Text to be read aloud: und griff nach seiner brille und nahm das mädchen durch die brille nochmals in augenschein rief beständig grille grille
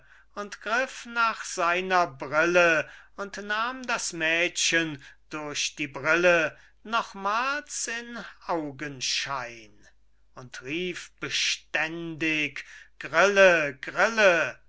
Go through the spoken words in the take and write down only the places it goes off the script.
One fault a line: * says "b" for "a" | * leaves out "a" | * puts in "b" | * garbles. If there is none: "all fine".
* puts in "und"